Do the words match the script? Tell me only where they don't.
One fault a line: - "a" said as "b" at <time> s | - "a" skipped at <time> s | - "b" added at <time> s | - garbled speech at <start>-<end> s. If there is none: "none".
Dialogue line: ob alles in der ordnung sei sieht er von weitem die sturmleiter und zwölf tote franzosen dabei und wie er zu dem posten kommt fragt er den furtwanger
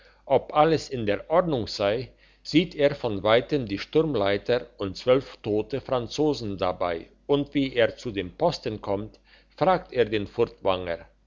none